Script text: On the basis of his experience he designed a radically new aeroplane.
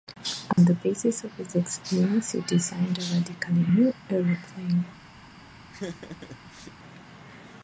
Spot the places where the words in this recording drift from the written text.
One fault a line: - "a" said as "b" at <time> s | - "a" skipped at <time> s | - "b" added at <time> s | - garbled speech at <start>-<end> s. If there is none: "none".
none